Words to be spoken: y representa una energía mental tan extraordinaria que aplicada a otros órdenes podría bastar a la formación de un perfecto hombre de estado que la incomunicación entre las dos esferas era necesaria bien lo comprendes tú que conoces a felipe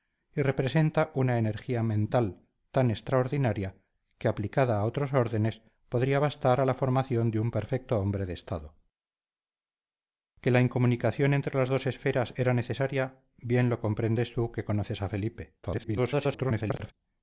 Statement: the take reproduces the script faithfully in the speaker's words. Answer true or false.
false